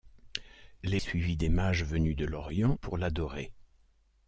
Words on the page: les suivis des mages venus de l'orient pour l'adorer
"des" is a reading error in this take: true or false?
false